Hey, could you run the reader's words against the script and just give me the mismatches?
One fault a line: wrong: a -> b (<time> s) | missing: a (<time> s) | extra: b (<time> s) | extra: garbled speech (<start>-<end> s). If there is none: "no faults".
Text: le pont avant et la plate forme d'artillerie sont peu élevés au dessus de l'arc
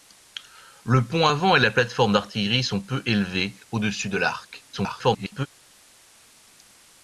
extra: garbled speech (4.7-5.5 s)